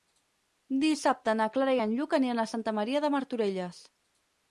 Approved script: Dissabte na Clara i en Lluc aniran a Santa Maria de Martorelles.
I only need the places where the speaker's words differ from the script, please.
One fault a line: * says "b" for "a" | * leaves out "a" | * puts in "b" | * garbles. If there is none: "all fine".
all fine